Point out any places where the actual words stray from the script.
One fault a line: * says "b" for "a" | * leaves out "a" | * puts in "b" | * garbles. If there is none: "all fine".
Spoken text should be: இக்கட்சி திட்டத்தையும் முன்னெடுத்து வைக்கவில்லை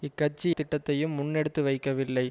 all fine